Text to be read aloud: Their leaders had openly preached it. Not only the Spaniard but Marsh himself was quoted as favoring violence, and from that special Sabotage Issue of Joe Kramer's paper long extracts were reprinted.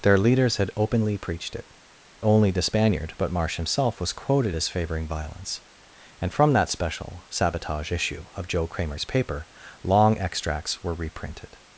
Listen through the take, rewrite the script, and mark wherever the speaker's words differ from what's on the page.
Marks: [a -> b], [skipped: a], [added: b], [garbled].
Their leaders had openly preached it. [skipped: Not] only the Spaniard but Marsh himself was quoted as favoring violence, and from that special Sabotage Issue of Joe Kramer's paper long extracts were reprinted.